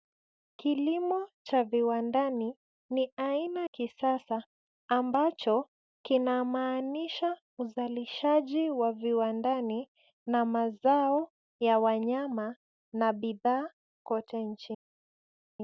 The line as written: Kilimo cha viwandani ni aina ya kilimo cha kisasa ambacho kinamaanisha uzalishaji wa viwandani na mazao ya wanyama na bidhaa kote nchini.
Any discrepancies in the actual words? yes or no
yes